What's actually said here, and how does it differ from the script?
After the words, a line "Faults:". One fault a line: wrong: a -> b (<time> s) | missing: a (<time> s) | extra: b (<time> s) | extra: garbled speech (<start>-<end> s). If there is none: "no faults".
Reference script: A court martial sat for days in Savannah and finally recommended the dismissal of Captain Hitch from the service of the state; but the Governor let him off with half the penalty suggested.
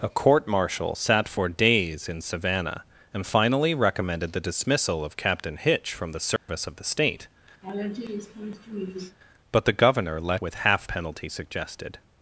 A court martial sat for days in Savannah and finally recommended the dismissal of Captain Hitch from the service of the state; but the Governor let with half penalty suggested.
Faults:
missing: him off (10.4 s)
missing: the (10.9 s)